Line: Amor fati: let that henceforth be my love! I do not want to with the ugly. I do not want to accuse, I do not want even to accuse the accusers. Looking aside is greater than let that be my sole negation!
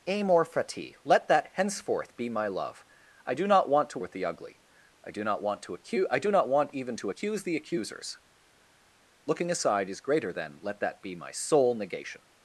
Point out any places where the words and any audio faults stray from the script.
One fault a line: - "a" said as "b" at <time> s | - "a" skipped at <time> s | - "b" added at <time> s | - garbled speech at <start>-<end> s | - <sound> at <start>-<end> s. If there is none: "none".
none